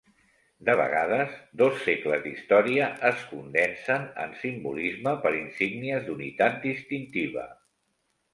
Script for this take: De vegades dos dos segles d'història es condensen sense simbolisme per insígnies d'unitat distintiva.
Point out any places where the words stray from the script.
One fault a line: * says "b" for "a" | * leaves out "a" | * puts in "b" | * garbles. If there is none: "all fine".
* leaves out "dos"
* says "en" for "sense"